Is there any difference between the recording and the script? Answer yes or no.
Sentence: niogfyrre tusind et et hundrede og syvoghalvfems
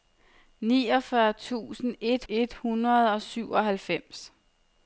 no